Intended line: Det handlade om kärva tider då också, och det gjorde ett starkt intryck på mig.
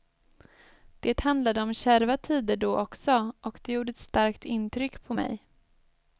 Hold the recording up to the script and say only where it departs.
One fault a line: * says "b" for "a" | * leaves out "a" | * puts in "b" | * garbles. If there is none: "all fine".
all fine